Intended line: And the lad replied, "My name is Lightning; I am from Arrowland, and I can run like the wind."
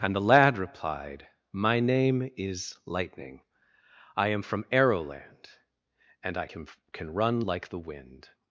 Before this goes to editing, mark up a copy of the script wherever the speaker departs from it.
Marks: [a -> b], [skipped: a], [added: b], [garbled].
And the lad replied, "My name is Lightning; I am from Arrowland, and I can [added: can] run like the wind."